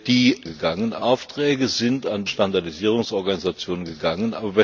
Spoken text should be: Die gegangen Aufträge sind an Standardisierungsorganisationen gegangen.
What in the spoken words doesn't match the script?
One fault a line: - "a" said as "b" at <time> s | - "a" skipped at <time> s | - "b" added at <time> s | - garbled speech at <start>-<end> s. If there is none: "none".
none